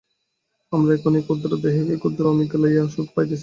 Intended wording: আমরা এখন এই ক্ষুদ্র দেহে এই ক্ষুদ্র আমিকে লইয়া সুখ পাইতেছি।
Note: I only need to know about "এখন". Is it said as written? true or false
true